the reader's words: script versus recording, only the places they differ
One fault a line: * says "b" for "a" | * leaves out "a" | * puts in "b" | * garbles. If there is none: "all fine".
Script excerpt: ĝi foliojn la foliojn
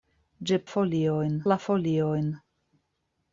all fine